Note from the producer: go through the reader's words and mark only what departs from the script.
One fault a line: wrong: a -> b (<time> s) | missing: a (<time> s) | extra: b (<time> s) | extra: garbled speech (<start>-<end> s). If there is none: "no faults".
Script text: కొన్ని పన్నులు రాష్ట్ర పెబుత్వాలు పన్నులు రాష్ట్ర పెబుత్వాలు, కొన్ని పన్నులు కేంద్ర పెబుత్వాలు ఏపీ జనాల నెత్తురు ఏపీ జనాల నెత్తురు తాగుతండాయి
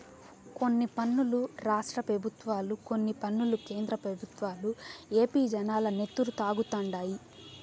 missing: పన్నులు రాష్ట్ర పెబుత్వాలు (2.8 s)
missing: ఏపీ జనాల నెత్తురు (6.3 s)